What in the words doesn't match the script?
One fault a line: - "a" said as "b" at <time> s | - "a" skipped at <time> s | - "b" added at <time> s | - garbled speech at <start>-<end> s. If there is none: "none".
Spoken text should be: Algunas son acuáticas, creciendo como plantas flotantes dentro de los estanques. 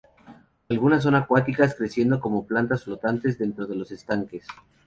none